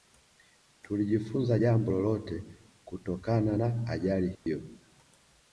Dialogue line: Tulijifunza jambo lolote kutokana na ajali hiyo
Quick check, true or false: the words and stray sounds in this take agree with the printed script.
false